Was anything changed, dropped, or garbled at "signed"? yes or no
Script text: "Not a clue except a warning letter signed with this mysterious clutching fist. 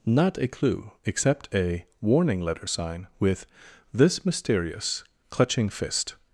yes